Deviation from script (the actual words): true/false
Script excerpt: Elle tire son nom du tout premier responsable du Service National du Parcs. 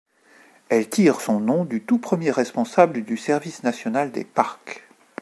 true